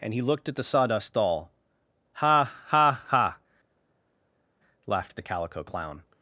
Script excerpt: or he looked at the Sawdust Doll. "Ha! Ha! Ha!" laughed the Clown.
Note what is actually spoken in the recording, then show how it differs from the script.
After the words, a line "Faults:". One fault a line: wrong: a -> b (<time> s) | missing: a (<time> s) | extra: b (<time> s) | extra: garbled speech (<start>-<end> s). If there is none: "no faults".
and he looked at the Sawdust Doll. "Ha! Ha! Ha!" laughed the Calico Clown.
Faults:
wrong: or -> and (0.0 s)
extra: Calico (5.2 s)